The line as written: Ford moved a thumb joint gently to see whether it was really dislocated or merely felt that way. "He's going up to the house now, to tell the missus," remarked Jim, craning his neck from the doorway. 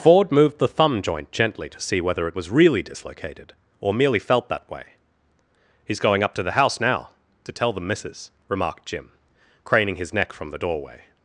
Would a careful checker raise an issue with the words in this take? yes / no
yes